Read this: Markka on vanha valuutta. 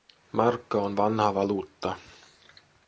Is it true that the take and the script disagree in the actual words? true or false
false